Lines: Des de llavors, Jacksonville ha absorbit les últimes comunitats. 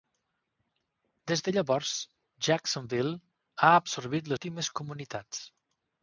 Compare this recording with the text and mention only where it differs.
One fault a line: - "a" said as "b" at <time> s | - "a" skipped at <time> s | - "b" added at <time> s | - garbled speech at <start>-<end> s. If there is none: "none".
- "les" skipped at 4.3 s